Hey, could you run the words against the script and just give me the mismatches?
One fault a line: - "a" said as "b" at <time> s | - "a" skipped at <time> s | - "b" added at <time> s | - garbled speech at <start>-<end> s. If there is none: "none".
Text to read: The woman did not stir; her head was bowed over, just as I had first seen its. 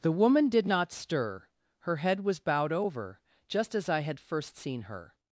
- "its" said as "her" at 4.8 s